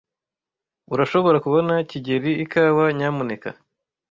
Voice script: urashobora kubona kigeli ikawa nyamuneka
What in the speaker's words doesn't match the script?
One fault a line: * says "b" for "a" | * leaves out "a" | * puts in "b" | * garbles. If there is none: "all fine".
all fine